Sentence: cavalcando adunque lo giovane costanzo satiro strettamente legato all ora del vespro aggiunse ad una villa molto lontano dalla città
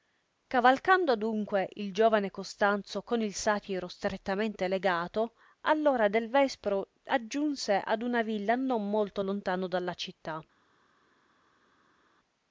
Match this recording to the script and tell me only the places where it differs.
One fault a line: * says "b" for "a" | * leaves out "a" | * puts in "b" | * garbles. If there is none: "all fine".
* says "il" for "lo"
* puts in "con il"
* puts in "non"